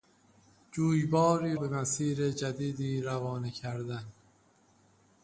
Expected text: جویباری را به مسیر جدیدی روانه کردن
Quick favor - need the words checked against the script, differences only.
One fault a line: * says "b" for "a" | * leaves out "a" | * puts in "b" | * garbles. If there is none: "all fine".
* leaves out "را"